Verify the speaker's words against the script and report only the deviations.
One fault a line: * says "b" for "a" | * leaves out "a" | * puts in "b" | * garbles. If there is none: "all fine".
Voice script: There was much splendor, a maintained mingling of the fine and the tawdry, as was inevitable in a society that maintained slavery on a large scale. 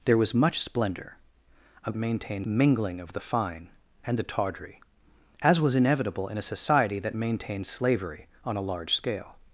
all fine